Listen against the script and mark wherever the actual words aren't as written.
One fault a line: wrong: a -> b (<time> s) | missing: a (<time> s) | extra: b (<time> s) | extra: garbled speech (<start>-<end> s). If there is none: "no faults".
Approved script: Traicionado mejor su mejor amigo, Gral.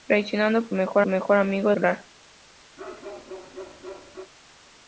no faults